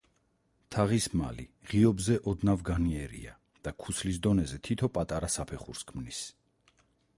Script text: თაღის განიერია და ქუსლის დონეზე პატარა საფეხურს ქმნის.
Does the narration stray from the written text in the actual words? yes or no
yes